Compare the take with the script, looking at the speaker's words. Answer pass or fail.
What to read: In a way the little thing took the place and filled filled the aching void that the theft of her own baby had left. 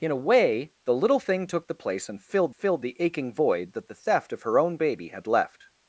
pass